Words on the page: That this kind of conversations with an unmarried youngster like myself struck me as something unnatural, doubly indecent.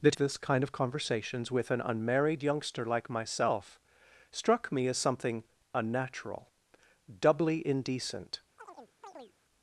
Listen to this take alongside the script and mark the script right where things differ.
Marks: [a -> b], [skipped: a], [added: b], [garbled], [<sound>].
That this kind of conversations with an unmarried youngster like myself struck me as something unnatural, doubly indecent. [chirp]